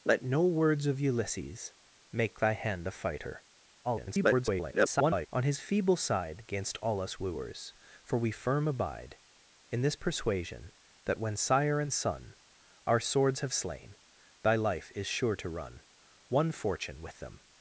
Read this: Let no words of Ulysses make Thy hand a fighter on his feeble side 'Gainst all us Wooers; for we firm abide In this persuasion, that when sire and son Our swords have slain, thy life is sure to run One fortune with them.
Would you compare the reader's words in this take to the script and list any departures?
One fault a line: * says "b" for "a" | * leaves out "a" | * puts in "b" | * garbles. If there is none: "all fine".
* garbles